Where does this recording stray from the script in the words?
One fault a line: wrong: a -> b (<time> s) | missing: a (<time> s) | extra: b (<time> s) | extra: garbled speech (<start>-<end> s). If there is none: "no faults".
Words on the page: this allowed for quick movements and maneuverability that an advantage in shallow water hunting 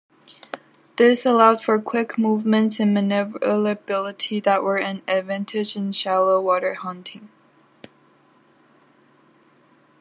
extra: were (4.6 s)